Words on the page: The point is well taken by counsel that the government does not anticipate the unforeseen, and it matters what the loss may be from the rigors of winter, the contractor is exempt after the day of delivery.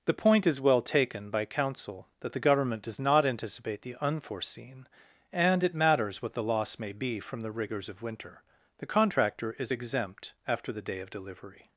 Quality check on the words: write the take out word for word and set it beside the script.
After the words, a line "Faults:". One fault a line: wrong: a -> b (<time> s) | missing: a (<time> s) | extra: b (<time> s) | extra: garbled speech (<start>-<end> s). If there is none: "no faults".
The point is well taken by counsel that the government does not anticipate the unforeseen, and it matters what the loss may be from the rigors of winter, the contractor is exempt after the day of delivery.
Faults:
no faults